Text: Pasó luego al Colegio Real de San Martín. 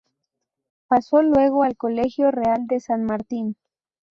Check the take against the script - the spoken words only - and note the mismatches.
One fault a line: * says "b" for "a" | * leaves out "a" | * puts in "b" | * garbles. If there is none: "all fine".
all fine